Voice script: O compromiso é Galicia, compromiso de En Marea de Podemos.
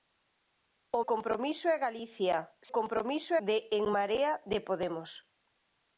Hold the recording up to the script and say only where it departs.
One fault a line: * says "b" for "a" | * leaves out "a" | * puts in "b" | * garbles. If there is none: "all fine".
all fine